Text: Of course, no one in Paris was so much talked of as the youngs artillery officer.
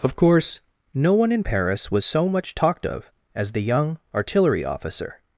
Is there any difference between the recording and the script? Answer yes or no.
yes